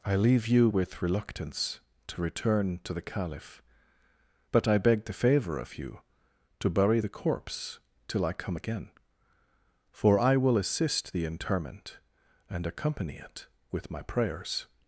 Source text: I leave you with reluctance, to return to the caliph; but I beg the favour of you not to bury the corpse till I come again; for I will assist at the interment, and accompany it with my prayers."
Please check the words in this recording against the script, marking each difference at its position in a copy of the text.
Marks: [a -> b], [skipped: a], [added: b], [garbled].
I leave you with reluctance, to return to the caliph; but I beg the favour of you [skipped: not] to bury the corpse till I come again; for I will assist [skipped: at] the interment, and accompany it with my prayers."